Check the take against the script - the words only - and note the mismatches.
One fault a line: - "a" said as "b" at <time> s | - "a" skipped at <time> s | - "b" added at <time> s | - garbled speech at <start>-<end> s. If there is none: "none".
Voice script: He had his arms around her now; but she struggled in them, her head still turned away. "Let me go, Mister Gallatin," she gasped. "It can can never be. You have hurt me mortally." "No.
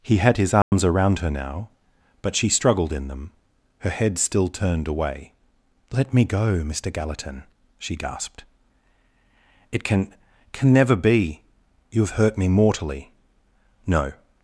none